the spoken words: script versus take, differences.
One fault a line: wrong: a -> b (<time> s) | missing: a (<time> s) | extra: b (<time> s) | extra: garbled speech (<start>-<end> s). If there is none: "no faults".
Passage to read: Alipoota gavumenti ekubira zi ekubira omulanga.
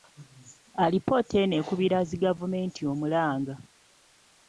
wrong: gavumenti -> eno (1.4 s)
wrong: ekubira -> gavumenti (2.2 s)